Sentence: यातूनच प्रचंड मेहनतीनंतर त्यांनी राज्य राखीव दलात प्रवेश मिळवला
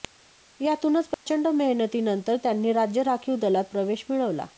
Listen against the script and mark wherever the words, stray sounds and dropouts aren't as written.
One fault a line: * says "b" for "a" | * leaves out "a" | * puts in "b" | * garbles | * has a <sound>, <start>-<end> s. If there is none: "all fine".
* has a dropout, 1.1-1.3 s